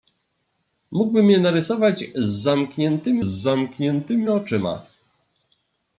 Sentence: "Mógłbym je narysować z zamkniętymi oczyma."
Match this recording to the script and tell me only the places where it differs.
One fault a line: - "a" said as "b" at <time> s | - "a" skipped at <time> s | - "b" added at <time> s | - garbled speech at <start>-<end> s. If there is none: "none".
- "zamkniętymi" added at 3.2 s